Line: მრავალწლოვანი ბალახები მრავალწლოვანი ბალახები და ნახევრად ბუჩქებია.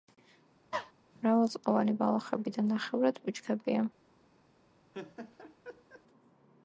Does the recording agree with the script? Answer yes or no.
no